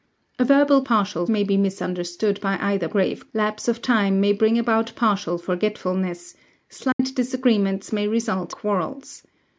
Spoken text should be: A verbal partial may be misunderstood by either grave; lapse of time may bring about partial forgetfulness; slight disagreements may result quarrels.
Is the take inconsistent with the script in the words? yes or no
no